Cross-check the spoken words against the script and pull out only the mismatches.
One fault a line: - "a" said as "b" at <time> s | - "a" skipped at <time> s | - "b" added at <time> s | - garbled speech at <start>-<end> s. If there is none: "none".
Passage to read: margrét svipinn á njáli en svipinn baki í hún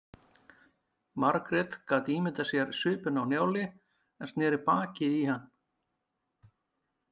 - "gat ímyndað sér" added at 1.9 s
- "svipinn" said as "sneri" at 4.3 s
- "hún" said as "hann" at 5.3 s